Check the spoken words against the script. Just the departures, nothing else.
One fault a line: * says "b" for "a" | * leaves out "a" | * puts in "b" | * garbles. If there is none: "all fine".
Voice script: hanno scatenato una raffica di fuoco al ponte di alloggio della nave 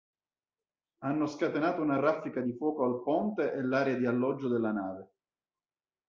* puts in "e l'area"